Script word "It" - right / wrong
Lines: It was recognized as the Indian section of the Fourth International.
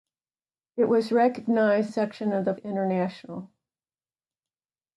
right